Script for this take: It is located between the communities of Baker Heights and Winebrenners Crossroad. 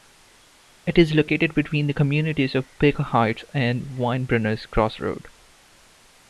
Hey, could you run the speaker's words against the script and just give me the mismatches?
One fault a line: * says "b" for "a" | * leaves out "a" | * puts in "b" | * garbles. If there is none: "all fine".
all fine